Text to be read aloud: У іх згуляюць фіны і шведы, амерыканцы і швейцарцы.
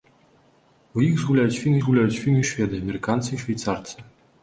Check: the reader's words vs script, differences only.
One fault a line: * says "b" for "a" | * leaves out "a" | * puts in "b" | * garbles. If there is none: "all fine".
* puts in "згуляюць фіны"